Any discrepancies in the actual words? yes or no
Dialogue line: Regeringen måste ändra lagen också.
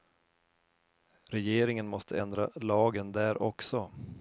yes